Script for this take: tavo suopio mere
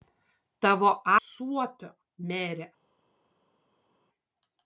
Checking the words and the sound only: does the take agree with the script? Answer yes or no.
yes